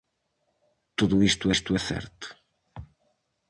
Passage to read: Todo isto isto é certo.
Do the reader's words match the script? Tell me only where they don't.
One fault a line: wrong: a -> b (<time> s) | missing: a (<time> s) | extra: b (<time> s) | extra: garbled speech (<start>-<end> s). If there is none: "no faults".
no faults